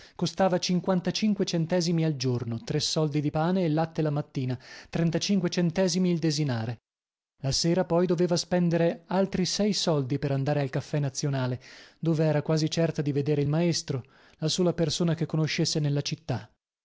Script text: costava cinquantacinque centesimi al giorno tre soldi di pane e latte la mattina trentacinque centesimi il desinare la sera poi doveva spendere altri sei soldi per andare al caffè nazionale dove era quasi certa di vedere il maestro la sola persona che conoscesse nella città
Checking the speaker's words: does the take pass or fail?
pass